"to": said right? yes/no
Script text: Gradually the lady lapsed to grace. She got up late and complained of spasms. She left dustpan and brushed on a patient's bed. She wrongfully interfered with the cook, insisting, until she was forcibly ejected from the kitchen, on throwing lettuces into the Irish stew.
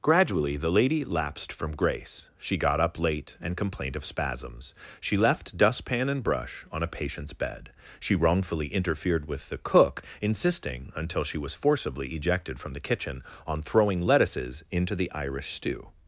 no